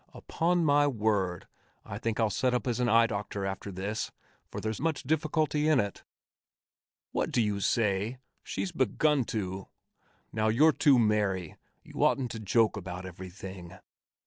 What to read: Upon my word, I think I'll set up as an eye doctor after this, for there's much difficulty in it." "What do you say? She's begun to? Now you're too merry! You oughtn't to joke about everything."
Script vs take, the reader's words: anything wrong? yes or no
no